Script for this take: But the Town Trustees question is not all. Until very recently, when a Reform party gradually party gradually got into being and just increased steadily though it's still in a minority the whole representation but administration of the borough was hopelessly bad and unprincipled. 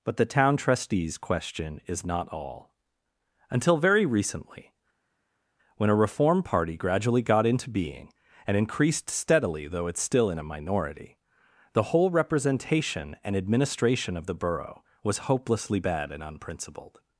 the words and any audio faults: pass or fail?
fail